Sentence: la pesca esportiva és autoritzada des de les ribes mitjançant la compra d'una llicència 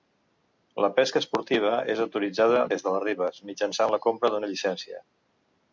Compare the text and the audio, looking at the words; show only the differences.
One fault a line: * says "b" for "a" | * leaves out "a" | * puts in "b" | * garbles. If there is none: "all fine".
all fine